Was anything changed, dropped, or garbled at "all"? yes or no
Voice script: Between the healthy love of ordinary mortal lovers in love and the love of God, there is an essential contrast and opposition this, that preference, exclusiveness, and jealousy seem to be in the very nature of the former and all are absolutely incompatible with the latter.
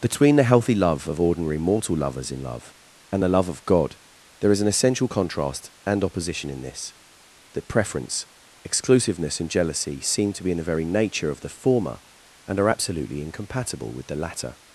yes